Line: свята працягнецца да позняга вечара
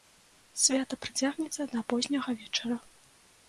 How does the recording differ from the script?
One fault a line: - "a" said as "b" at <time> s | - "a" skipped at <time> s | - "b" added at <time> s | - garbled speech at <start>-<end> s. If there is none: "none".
none